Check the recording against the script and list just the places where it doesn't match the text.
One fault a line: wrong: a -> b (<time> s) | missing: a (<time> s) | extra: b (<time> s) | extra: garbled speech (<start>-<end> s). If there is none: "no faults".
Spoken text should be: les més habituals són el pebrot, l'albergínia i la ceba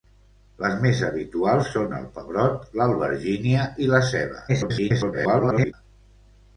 extra: garbled speech (4.5-5.7 s)